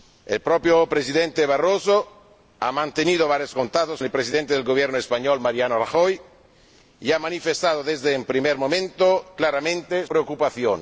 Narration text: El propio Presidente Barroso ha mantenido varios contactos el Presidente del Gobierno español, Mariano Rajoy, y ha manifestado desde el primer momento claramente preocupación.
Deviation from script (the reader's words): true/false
false